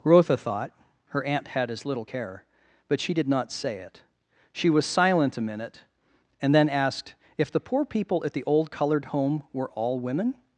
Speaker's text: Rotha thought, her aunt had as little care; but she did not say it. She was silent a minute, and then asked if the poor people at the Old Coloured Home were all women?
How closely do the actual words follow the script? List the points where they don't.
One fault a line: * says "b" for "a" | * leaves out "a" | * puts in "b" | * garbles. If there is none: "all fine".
all fine